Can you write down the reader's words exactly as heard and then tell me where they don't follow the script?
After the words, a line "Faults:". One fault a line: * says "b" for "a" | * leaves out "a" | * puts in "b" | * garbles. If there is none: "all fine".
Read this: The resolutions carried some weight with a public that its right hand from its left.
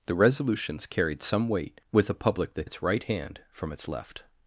The resolutions carried some weight with a public that its right hand from its left.
Faults:
all fine